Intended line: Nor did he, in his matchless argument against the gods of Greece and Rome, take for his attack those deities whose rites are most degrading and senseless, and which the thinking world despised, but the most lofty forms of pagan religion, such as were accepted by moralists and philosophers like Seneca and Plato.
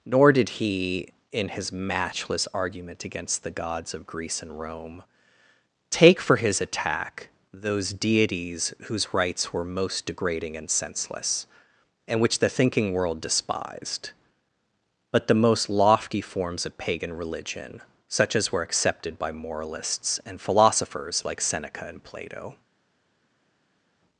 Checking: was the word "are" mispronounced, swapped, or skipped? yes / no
yes